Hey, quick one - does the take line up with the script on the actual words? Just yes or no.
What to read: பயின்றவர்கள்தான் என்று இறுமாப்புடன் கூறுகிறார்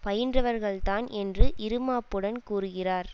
yes